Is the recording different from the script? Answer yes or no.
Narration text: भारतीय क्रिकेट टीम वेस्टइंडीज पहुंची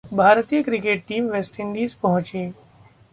no